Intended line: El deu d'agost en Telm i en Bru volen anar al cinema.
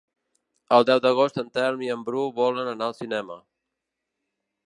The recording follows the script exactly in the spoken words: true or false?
true